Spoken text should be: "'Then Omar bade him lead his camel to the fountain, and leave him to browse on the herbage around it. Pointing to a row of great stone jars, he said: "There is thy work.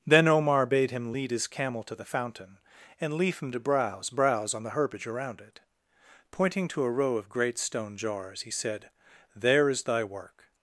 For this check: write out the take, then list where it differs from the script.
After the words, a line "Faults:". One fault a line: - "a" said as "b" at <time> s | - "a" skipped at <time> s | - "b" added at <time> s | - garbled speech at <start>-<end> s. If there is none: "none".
"'Then Omar bade him lead his camel to the fountain, and leave him to browse browse on the herbage around it. Pointing to a row of great stone jars, he said: "There is thy work.
Faults:
- "browse" added at 4.1 s